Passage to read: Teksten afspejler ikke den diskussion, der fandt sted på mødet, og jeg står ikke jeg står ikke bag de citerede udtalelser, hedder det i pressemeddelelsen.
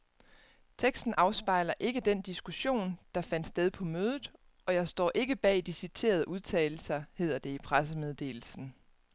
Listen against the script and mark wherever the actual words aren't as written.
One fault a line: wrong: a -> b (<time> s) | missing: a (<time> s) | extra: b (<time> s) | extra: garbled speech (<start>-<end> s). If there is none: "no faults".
missing: jeg står ikke (5.3 s)